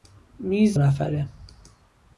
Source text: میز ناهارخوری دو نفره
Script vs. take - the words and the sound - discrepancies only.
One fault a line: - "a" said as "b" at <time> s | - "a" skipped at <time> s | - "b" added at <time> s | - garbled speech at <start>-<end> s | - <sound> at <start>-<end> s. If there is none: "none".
- "ناهارخوری دو" skipped at 0.8 s